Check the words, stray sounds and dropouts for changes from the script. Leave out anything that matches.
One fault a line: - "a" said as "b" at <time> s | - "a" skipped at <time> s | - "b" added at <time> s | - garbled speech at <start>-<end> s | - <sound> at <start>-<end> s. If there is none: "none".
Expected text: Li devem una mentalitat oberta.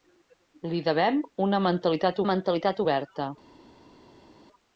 - "mentalitat" added at 2.3 s